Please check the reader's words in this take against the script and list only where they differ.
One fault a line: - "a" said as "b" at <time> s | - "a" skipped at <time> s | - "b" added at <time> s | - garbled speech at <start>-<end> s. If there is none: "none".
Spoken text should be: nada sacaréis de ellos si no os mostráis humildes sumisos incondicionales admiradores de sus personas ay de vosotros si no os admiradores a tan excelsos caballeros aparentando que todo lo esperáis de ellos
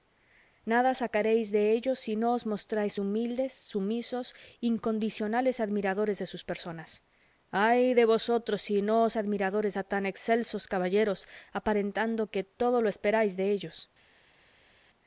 none